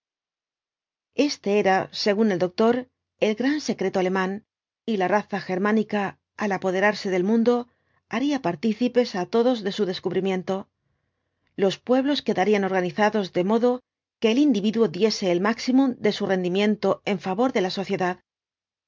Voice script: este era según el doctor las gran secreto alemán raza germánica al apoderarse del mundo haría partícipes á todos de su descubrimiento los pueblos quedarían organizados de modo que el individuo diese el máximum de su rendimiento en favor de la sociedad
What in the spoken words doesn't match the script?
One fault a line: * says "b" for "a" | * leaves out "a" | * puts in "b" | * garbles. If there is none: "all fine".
* says "el" for "las"
* puts in "y la"